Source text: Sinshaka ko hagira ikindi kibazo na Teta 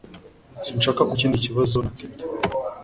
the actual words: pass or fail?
fail